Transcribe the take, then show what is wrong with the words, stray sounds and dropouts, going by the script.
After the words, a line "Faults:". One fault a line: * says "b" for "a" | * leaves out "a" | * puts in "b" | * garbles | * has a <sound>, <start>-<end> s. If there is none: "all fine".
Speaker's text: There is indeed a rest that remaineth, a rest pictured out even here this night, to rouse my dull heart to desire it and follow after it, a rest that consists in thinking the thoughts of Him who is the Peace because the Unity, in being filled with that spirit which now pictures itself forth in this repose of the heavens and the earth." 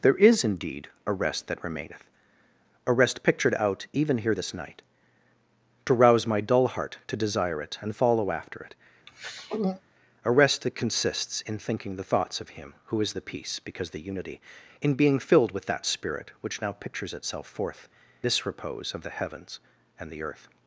There is indeed a rest that remaineth, a rest pictured out even here this night, to rouse my dull heart to desire it and follow after it, a rest that consists in thinking the thoughts of Him who is the Peace because the Unity, in being filled with that spirit which now pictures itself forth this repose of the heavens and the earth."
Faults:
* has a throat clearing, 9.1-9.8 s
* leaves out "in"